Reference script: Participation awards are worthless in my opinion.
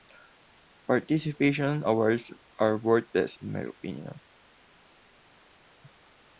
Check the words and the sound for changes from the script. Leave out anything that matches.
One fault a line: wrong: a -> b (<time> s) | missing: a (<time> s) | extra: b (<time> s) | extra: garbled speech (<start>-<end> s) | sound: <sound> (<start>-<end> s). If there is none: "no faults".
no faults